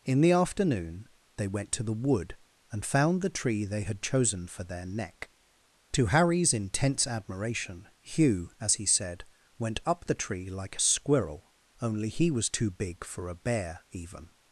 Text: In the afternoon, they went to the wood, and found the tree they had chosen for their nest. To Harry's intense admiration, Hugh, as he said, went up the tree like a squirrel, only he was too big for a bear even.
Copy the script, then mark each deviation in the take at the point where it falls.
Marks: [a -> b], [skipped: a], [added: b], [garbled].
In the afternoon, they went to the wood, and found the tree they had chosen for their [nest. -> neck] To Harry's intense admiration, Hugh, as he said, went up the tree like a squirrel, only he was too big for a bear even.